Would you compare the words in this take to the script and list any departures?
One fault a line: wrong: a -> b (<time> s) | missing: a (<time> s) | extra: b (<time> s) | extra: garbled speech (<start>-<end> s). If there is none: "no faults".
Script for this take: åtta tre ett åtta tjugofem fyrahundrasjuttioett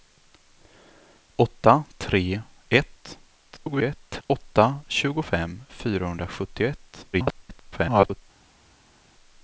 extra: garbled speech (3.4-4.2 s)
extra: garbled speech (7.1-8.2 s)